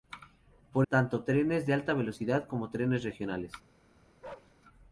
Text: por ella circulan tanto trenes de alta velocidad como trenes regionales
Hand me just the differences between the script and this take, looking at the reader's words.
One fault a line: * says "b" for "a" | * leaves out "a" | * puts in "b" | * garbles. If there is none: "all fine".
* leaves out "ella circulan"